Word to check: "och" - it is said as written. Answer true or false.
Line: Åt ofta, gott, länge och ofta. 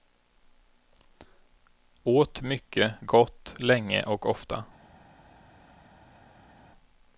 true